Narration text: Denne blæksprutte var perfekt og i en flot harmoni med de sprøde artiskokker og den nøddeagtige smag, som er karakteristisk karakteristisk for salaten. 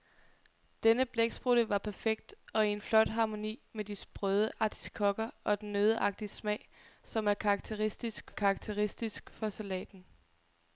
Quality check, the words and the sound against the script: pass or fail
pass